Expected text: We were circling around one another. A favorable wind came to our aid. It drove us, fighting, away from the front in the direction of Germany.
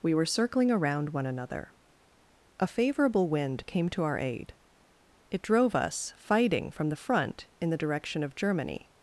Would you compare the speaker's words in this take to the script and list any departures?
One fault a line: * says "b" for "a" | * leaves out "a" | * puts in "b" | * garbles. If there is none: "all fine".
* leaves out "away"